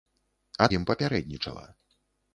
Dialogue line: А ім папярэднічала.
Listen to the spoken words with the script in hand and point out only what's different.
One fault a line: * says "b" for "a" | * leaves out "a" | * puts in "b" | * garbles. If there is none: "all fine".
all fine